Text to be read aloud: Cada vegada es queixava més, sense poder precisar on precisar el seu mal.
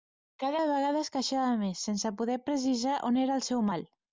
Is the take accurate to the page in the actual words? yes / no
no